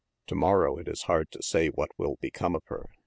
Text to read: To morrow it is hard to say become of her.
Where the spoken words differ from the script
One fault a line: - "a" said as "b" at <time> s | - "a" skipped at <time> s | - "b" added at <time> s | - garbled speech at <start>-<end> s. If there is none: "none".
- "what will" added at 1.7 s